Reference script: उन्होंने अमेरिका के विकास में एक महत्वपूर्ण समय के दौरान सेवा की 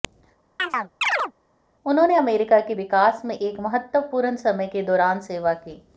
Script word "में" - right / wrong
right